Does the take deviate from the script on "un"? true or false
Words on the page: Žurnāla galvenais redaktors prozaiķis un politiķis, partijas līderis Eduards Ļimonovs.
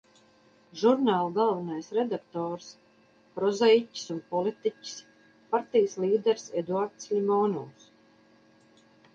false